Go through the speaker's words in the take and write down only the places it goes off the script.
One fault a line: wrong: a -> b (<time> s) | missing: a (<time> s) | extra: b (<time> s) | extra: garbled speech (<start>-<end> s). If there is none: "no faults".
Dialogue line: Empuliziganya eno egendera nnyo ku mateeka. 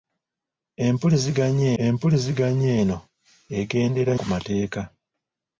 extra: empuliziganya (1.8 s)
missing: nnyo (4.1 s)